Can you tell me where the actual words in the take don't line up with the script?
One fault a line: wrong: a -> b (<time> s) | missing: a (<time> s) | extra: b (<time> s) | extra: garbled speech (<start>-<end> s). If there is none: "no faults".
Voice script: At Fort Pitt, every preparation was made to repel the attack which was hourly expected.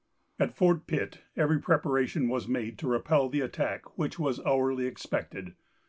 no faults